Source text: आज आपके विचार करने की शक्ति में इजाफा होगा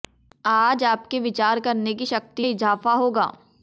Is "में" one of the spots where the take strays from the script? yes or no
yes